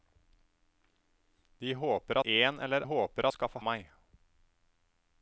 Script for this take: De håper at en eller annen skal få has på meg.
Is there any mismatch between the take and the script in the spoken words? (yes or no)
yes